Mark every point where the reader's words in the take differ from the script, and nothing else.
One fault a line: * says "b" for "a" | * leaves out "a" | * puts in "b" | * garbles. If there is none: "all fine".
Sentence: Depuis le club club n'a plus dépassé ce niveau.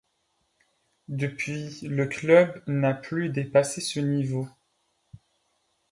* leaves out "club"